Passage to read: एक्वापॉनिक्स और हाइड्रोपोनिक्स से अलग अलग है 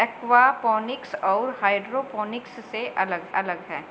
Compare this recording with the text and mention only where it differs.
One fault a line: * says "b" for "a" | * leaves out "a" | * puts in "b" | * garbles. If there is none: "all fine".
all fine